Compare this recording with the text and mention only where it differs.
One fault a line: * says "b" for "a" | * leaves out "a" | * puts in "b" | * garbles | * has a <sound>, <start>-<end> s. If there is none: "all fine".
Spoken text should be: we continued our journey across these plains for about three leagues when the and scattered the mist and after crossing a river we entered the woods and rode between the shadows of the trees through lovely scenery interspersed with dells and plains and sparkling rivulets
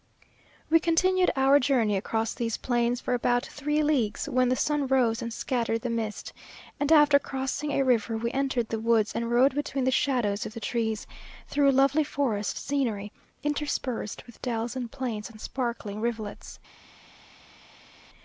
* puts in "sun rose"
* puts in "forest"